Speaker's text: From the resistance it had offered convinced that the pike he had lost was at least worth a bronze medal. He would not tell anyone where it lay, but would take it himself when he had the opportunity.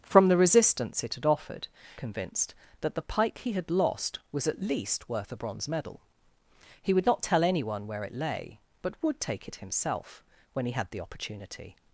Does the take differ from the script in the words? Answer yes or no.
no